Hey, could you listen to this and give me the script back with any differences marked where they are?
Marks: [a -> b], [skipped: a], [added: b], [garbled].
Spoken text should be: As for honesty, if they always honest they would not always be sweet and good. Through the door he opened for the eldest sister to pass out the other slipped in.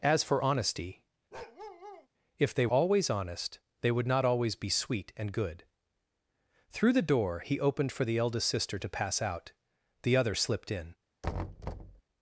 As for honesty, if they always honest they would not always be sweet and good. Through the door he opened for the eldest sister to pass out the other slipped in.